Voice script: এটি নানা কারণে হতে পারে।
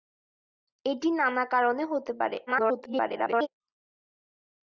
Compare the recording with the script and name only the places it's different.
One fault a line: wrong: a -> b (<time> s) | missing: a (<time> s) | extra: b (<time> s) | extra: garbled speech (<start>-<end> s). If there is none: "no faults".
extra: garbled speech (2.5-3.5 s)